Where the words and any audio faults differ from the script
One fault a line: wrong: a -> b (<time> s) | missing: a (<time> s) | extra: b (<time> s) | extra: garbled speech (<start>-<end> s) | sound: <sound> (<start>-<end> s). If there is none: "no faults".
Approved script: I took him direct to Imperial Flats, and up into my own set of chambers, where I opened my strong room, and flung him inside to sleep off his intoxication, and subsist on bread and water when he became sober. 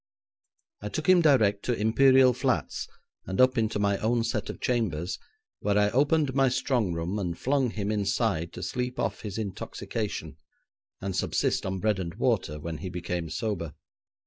no faults